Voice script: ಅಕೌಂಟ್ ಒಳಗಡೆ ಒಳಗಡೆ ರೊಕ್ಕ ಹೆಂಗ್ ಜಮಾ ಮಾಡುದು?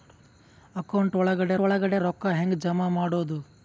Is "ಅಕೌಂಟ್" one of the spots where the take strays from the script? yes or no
no